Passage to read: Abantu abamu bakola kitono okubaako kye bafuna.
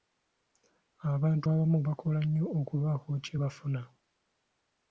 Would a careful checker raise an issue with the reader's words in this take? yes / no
yes